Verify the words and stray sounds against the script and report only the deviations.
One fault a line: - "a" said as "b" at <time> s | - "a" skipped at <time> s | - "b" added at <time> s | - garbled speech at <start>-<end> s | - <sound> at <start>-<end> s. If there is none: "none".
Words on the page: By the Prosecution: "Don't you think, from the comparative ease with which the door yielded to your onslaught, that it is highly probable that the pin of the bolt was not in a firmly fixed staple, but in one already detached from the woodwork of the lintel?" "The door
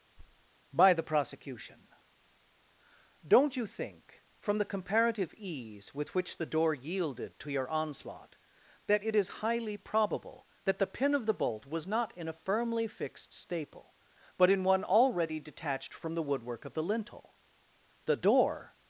- thud at 0.2-0.5 s